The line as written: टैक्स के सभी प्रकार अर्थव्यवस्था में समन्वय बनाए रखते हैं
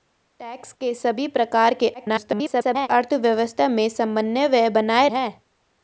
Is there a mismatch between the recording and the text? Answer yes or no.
yes